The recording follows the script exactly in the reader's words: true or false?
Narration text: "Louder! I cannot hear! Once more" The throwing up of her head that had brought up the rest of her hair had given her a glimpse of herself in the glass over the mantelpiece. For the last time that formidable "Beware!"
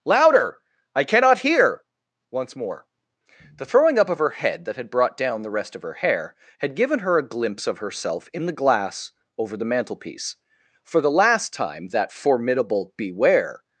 false